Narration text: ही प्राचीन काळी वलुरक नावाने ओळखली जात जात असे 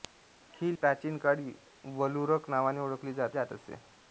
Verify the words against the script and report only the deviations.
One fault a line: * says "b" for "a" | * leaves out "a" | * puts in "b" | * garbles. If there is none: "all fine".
all fine